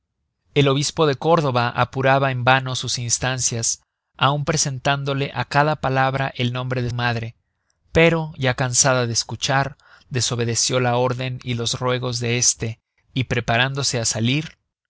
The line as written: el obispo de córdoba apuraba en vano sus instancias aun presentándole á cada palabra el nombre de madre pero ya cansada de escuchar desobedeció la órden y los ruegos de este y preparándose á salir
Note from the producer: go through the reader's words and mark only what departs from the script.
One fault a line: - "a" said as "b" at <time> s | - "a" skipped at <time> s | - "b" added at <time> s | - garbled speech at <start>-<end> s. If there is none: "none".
none